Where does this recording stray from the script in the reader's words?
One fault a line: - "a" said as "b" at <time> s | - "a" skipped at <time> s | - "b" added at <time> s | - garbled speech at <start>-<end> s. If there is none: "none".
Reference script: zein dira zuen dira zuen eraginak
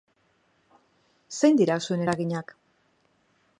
- "dira zuen" skipped at 2.0 s